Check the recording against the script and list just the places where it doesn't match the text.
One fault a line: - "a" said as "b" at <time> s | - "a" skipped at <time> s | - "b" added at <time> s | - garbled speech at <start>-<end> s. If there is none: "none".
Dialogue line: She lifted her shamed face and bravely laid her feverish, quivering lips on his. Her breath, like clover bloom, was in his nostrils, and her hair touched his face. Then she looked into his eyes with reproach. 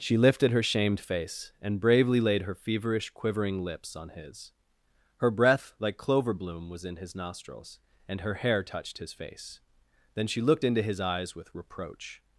none